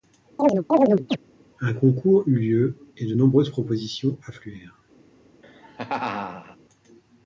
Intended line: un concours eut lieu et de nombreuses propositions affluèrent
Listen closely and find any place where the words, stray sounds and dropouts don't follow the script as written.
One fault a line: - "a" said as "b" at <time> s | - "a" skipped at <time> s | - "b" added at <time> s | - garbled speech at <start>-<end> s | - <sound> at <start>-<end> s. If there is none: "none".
- chirp at 0.4-1.2 s
- laugh at 5.4-6.6 s